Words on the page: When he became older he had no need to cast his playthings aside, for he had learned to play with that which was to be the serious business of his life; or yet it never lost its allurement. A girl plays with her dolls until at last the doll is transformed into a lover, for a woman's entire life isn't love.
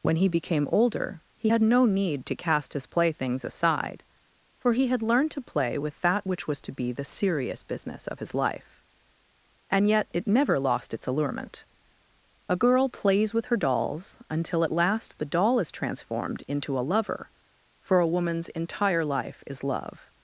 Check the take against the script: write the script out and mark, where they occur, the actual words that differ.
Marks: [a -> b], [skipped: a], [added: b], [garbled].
When he became older he had no need to cast his playthings aside, for he had learned to play with that which was to be the serious business of his life; [or -> and] yet it never lost its allurement. A girl plays with her dolls until at last the doll is transformed into a lover, for a woman's entire life [isn't -> is] love.